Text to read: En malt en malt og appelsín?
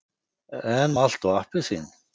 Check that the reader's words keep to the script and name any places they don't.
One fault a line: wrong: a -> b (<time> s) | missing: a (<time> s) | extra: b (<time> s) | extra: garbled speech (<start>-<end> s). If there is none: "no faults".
missing: en malt (1.3 s)